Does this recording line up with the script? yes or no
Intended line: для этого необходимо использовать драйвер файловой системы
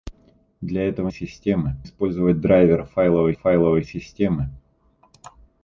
no